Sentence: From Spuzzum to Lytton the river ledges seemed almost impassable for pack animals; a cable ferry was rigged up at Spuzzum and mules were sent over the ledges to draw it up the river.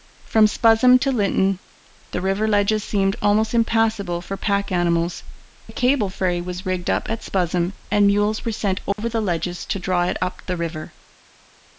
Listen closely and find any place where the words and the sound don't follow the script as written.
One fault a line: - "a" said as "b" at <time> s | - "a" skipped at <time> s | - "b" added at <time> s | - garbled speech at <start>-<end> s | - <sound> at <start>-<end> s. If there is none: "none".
- dropout at 8.9-9.0 s